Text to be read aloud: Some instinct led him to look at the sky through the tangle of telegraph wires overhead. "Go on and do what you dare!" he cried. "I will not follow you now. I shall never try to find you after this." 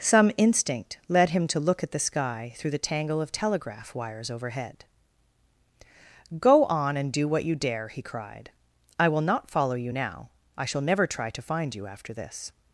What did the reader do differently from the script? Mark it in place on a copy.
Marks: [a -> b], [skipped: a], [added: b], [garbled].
Some instinct led him to look at the sky through the tangle of telegraph wires overhead. "Go on and do what you dare!" he cried. "I will not follow you now. I shall never try to find you after this."